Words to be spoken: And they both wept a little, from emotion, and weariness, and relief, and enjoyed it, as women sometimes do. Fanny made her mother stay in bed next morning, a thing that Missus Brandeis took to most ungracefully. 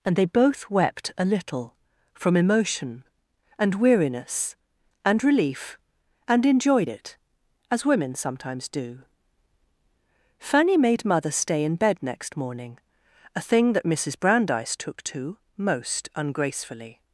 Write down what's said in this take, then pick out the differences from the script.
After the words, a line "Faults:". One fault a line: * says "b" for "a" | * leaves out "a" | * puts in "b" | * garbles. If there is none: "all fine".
And they both wept a little, from emotion, and weariness, and relief, and enjoyed it, as women sometimes do. Fanny made mother stay in bed next morning, a thing that Missus Brandeis took to most ungracefully.
Faults:
* leaves out "her"